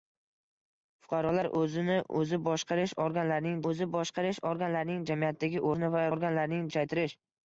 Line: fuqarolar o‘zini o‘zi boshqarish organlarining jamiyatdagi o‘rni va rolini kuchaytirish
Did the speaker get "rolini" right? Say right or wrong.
wrong